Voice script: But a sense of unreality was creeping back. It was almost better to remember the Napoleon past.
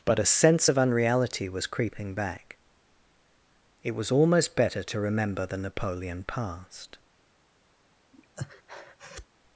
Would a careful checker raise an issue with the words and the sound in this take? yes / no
yes